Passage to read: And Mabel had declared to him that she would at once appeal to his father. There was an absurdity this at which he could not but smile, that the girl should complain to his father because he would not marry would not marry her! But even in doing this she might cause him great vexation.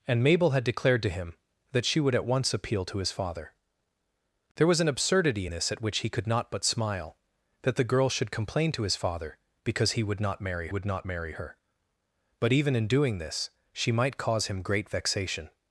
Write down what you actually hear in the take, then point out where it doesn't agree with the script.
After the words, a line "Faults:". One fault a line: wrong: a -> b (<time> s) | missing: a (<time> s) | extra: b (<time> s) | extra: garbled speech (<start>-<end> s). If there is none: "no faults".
And Mabel had declared to him that she would at once appeal to his father. There was an absurdity this at which he could not but smile, that the girl should complain to his father because he would not marry would not marry her! But even in doing this she might cause him great vexation.
Faults:
no faults